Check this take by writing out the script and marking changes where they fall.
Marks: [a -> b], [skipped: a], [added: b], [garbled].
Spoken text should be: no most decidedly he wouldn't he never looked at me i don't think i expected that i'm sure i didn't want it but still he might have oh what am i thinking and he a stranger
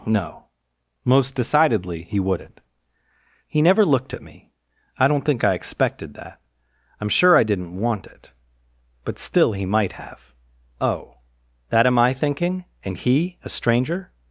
no most decidedly he wouldn't he never looked at me i don't think i expected that i'm sure i didn't want it but still he might have oh [what -> that] am i thinking and he a stranger